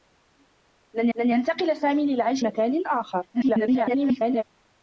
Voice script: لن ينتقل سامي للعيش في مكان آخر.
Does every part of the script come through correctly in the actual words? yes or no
no